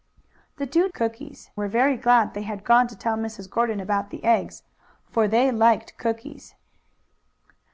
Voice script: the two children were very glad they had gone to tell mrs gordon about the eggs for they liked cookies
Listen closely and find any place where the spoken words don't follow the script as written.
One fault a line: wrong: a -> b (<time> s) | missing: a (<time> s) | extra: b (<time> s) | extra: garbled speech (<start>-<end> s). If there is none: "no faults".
wrong: children -> cookies (0.9 s)